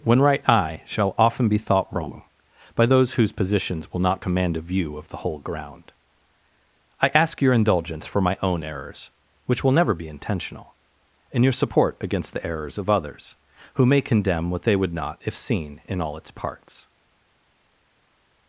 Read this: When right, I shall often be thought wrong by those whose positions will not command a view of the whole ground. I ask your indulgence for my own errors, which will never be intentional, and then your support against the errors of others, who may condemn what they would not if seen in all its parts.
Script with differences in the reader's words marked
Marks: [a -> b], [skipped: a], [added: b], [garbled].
When right, I shall often be thought wrong by those whose positions will not command a view of the whole ground. I ask your indulgence for my own errors, which will never be intentional, and [skipped: then] your support against the errors of others, who may condemn what they would not if seen in all its parts.